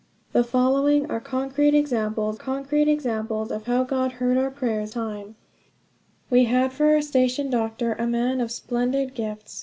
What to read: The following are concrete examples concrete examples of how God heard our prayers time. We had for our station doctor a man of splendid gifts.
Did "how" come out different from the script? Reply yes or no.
no